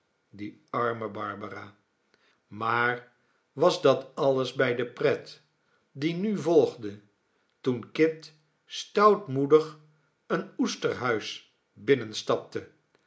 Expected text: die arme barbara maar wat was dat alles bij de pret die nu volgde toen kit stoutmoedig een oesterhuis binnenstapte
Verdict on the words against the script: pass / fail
fail